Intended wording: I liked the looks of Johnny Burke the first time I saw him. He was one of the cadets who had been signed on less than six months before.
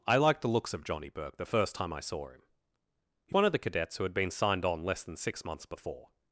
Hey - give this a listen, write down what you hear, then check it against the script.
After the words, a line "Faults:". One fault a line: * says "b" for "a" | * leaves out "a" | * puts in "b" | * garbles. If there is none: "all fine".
I liked the looks of Johnny Burke the first time I saw him. He one of the cadets who had been signed on less than six months before.
Faults:
* leaves out "was"